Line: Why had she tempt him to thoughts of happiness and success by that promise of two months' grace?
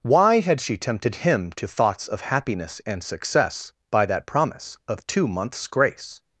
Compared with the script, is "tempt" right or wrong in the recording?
wrong